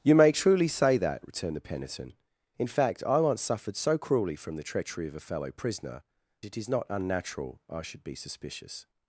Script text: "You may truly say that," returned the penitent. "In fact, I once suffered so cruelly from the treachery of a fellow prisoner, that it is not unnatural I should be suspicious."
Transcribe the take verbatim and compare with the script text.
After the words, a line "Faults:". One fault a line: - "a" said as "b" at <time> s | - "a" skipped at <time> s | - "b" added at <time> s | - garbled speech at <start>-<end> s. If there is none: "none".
"You may truly say that," returned the penitent. "In fact, I once suffered so cruelly from the treachery of a fellow prisoner, it is not unnatural I should be suspicious."
Faults:
- "that" skipped at 6.0 s